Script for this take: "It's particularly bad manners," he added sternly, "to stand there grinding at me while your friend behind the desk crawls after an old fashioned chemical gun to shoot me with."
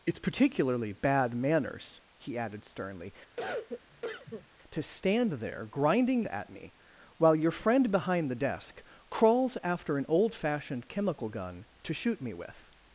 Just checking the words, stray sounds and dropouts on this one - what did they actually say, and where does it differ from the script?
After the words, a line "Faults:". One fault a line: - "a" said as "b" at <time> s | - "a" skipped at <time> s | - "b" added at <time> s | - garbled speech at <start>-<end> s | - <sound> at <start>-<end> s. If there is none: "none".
"It's particularly bad manners," he added sternly, "to stand there grinding at me while your friend behind the desk crawls after an old fashioned chemical gun to shoot me with."
Faults:
- cough at 3.4-4.5 s